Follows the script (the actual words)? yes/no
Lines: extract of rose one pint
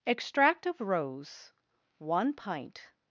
yes